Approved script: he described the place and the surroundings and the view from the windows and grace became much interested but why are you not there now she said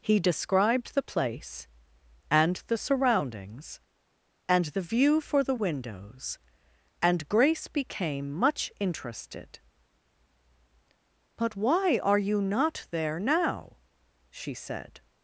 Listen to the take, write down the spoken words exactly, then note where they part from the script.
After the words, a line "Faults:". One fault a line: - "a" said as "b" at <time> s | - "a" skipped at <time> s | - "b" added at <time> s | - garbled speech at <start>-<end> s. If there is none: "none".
he described the place and the surroundings and the view for the windows and grace became much interested but why are you not there now she said
Faults:
- "from" said as "for" at 5.2 s